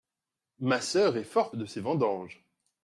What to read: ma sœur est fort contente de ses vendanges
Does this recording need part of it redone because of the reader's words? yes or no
yes